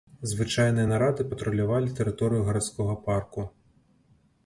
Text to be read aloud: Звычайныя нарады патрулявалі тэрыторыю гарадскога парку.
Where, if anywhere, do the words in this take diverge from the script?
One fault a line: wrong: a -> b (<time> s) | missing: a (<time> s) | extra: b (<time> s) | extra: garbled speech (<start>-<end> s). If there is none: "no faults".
no faults